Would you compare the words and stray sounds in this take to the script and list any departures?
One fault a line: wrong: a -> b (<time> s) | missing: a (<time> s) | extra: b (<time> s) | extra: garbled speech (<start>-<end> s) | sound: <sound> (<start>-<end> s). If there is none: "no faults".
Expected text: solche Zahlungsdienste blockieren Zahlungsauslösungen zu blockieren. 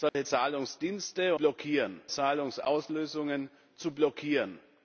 sound: dropout (0.1-0.1 s)